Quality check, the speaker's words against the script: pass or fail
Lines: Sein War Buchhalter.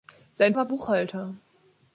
pass